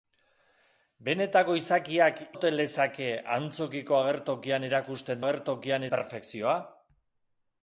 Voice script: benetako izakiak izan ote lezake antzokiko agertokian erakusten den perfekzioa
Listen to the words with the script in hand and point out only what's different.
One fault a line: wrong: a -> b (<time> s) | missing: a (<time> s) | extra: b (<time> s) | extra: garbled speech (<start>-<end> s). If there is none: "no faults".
missing: izan (2.2 s)
wrong: den -> agertokian (5.2 s)